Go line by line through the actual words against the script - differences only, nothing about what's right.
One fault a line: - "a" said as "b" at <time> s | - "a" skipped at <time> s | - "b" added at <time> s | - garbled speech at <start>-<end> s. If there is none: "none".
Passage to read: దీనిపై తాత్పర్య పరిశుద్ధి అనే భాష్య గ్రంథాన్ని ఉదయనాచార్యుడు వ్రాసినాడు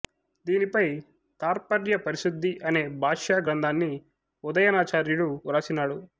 none